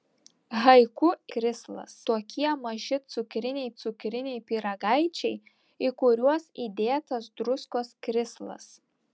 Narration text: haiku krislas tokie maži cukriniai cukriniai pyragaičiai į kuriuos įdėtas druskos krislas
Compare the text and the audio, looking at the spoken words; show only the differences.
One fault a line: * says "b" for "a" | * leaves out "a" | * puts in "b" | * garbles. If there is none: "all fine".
all fine